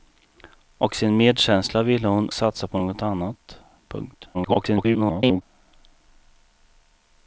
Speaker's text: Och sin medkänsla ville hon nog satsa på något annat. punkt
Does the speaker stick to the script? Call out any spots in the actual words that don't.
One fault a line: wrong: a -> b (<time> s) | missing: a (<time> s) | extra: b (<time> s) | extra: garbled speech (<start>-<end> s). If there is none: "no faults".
missing: nog (2.3 s)
extra: garbled speech (4.3-5.4 s)